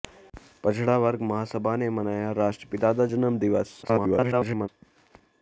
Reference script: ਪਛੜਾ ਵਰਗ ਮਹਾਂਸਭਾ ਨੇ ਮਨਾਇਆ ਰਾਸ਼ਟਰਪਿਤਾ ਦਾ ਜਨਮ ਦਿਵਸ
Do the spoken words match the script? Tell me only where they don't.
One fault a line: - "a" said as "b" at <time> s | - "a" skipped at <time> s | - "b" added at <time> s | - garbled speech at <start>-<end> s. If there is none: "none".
- garbled speech at 3.8-4.7 s